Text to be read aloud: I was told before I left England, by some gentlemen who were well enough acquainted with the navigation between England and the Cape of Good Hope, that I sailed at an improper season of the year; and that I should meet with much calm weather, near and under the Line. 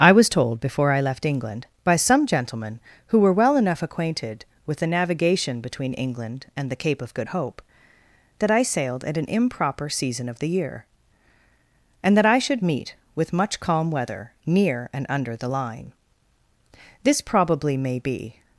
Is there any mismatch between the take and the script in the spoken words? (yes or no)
yes